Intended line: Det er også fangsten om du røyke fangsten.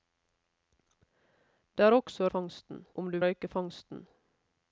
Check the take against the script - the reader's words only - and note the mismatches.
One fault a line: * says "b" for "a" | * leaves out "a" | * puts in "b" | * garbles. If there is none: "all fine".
all fine